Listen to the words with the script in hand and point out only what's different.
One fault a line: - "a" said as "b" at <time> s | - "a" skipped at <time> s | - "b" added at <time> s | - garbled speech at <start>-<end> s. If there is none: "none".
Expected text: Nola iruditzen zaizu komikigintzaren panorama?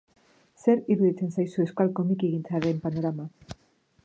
- "Nola" said as "Zer" at 0.6 s
- "euskal" added at 1.7 s